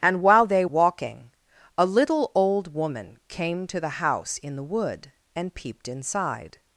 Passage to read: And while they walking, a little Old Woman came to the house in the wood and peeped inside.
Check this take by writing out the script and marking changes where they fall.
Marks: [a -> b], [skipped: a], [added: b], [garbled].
And while they walking, a little Old Woman came to the house in the wood and peeped inside.